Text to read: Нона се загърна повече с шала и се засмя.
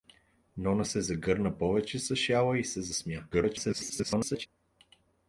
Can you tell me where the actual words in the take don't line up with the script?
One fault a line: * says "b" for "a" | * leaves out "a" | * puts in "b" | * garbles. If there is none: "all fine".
* garbles